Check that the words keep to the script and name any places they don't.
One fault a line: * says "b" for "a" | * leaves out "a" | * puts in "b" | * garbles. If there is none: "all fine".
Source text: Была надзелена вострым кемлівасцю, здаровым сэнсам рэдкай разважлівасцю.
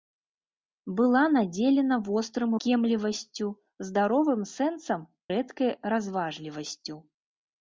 all fine